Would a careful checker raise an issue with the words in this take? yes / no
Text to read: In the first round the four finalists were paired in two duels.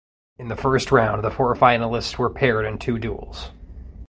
no